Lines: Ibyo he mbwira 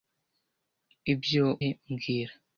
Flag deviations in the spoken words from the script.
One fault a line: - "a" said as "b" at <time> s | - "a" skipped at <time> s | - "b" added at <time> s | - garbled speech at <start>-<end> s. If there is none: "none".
none